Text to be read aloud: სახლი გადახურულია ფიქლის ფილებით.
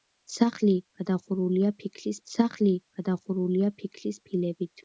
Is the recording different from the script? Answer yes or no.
yes